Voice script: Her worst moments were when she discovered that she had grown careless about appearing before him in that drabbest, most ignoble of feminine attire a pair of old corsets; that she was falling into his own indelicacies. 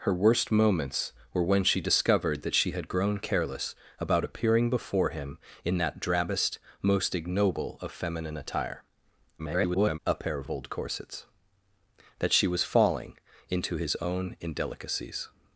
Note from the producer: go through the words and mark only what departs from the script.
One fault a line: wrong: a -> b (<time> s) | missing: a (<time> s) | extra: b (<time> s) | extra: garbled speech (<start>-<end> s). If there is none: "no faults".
extra: garbled speech (9.4-10.0 s)
extra: of (10.4 s)